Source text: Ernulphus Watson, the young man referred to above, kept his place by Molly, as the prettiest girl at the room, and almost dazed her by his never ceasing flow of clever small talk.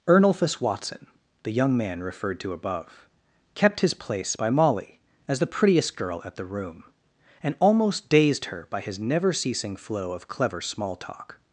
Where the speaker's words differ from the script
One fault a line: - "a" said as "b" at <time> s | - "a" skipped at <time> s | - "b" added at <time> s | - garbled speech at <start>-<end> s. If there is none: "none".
none